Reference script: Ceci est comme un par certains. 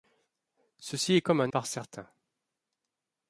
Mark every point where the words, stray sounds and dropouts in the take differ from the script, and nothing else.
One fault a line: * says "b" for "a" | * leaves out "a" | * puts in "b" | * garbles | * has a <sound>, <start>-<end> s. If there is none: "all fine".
all fine